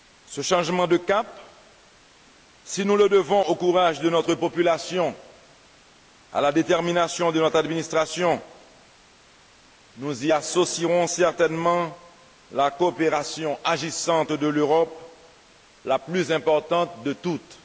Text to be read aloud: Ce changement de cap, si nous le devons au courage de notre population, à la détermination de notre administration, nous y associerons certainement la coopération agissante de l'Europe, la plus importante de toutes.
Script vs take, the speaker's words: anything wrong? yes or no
no